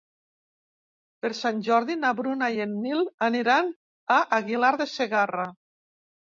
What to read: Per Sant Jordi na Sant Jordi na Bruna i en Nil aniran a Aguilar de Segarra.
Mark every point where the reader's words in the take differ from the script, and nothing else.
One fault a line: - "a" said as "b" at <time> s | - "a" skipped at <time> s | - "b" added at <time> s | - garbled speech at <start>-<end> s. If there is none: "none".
- "Sant Jordi na" skipped at 2.1 s